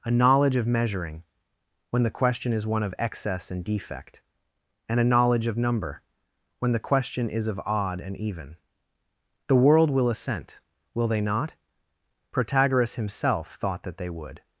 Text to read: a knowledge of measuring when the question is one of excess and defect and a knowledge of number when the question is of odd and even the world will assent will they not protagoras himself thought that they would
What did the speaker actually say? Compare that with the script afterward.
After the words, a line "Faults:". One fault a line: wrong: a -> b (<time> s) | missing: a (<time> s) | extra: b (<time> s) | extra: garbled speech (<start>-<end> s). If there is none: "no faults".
a knowledge of measuring when the question is one of excess and defect and a knowledge of number when the question is of odd and even the world will assent will they not protagoras himself thought that they would
Faults:
no faults